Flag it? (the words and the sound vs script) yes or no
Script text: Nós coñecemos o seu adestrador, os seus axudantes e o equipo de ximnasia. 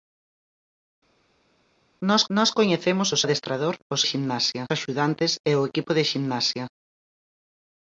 yes